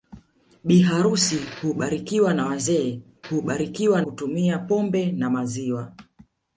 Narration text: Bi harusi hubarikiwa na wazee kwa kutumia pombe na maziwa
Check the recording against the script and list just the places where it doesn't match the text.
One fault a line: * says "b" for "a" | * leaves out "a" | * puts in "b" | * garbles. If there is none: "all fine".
* says "hubarikiwa" for "kwa"